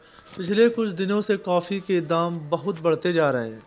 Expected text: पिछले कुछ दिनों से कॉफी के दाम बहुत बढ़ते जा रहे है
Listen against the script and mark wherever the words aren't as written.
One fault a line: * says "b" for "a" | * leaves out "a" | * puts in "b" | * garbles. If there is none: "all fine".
all fine